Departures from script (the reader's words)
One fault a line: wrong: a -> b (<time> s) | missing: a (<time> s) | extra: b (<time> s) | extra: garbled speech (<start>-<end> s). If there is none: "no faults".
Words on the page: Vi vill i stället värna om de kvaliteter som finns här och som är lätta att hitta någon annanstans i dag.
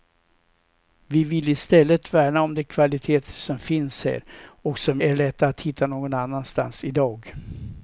no faults